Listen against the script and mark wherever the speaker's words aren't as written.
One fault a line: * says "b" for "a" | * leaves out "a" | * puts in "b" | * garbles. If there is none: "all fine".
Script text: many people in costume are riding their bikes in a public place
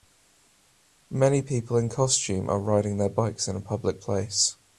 all fine